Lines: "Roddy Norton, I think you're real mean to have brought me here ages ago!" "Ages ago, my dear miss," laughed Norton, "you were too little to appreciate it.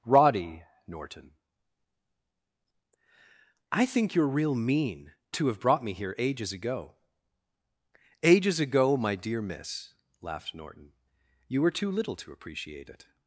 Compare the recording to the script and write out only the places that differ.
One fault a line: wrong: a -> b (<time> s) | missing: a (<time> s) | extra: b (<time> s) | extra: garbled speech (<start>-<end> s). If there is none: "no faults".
no faults